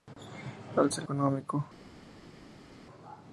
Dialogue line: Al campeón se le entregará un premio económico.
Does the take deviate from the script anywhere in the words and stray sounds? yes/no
yes